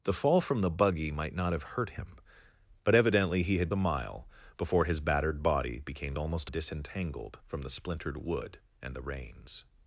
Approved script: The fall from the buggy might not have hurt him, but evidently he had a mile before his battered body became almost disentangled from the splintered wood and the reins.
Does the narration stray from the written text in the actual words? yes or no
no